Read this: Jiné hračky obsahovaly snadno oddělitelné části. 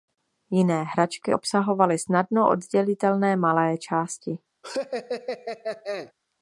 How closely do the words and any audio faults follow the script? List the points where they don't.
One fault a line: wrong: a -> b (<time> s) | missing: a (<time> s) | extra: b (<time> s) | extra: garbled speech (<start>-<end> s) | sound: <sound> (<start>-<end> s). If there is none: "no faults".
extra: malé (3.4 s)
sound: laugh (4.6-6.1 s)